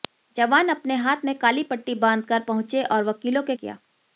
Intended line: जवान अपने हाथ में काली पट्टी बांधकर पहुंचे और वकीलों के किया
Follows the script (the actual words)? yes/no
yes